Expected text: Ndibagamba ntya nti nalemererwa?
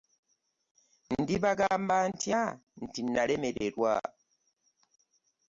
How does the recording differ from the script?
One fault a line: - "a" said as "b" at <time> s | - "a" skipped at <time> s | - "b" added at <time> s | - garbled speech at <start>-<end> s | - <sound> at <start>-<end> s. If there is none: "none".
none